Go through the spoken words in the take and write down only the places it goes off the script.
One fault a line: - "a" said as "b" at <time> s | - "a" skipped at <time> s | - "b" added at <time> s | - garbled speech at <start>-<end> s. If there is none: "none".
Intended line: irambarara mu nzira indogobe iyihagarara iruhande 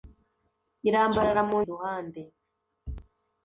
- "nzira indogobe iyihagarara" skipped at 1.6 s